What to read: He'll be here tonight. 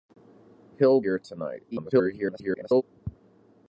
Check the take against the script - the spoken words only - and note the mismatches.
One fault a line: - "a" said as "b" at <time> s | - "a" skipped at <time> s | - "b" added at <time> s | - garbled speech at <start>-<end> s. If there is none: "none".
- "be" skipped at 1.0 s
- garbled speech at 1.7-2.8 s